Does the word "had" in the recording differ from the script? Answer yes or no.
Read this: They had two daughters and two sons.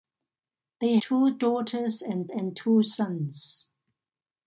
yes